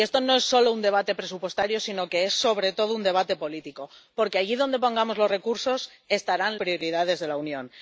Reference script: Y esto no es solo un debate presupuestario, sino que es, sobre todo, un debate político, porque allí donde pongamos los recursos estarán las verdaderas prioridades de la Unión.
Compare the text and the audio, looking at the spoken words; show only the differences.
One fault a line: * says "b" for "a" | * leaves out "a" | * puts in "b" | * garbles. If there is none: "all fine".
* leaves out "las verdaderas"